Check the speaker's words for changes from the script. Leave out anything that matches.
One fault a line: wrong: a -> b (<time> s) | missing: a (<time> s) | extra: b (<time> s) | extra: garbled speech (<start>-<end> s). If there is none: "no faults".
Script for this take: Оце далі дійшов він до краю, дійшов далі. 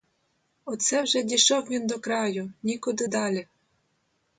wrong: далі -> вже (1.0 s)
wrong: дійшов -> нікуди (2.6 s)